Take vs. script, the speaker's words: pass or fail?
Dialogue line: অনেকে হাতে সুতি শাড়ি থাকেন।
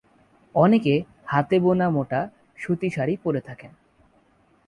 fail